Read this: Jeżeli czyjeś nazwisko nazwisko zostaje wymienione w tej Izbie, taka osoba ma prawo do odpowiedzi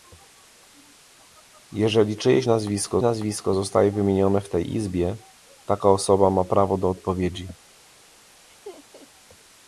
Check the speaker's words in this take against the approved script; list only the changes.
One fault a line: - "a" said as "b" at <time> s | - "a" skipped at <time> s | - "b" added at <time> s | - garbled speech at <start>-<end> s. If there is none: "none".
none